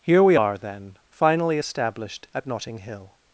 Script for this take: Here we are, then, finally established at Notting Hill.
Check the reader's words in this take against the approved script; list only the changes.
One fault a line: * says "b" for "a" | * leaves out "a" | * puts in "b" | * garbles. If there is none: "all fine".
all fine